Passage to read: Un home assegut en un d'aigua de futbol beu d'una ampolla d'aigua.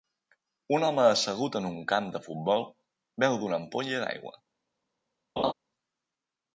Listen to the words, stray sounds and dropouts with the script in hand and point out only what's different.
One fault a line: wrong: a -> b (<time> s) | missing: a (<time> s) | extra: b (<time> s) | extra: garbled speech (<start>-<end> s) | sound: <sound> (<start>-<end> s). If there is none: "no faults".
wrong: d'aigua -> camp (1.9 s)
sound: laugh (5.4-5.5 s)